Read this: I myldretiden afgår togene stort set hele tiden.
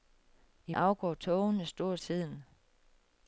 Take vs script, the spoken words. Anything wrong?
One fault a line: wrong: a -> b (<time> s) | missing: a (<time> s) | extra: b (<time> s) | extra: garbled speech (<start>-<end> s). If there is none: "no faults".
missing: myldretiden (0.7 s)
missing: set hele (2.0 s)